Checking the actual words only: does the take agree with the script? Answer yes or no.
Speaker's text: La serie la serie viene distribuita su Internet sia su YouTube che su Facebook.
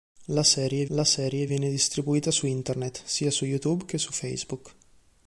yes